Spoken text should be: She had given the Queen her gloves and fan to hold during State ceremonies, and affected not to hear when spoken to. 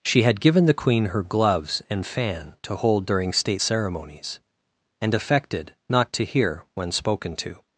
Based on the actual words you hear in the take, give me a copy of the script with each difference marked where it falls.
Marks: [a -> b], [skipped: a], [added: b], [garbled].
She had given the Queen her gloves and fan to hold during State ceremonies, and affected not to hear when spoken to.